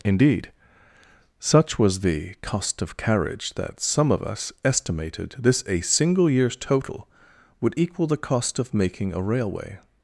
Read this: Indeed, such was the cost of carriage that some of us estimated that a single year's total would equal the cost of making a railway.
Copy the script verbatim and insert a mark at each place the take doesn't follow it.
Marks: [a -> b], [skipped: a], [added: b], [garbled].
Indeed, such was the cost of carriage that some of us estimated [that -> this] a single year's total would equal the cost of making a railway.